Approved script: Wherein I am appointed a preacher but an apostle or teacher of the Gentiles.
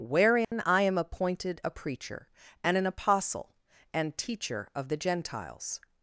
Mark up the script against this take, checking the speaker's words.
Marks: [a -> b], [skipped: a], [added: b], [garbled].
Wherein I am appointed a preacher [but -> and] an apostle [or -> and] teacher of the Gentiles.